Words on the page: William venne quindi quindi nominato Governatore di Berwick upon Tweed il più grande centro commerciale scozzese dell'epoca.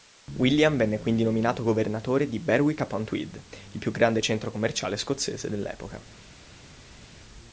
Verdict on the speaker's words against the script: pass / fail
fail